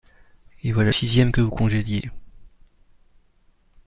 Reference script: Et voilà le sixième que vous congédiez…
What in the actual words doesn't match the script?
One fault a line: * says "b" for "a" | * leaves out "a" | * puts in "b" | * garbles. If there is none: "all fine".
* leaves out "le"